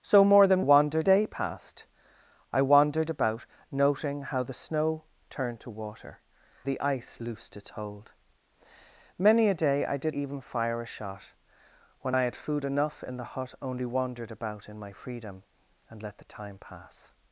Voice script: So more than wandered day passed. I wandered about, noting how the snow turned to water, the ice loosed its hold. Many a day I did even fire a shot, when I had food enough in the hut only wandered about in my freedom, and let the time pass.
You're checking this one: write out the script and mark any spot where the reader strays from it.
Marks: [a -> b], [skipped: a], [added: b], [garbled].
So more than wandered day passed. I wandered about, noting how the snow turned to water, the ice loosed its hold. Many a day I did even fire a shot, when I had food enough in the hut only wandered about in my freedom, and let the time pass.